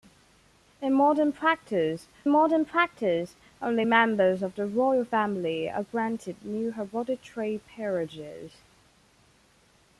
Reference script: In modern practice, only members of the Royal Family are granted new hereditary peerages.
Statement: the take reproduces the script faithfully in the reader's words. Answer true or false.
false